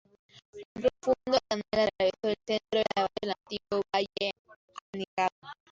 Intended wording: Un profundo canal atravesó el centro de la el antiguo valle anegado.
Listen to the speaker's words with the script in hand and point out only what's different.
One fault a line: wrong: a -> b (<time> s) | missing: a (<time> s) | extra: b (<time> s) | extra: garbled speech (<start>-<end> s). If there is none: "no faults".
no faults